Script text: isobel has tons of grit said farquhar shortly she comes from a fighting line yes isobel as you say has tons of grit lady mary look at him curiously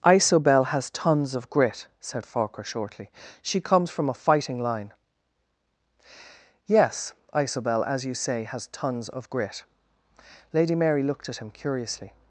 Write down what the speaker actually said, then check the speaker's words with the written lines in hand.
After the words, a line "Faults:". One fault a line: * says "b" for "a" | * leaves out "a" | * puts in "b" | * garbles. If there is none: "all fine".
isobel has tons of grit said farquhar shortly she comes from a fighting line yes isobel as you say has tons of grit lady mary looked at him curiously
Faults:
* says "looked" for "look"